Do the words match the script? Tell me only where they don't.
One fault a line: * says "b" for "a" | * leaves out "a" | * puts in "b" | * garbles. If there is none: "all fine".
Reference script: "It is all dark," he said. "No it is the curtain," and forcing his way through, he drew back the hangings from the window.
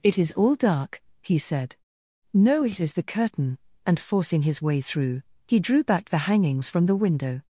all fine